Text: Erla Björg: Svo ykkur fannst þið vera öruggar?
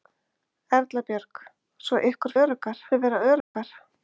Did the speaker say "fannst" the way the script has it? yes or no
no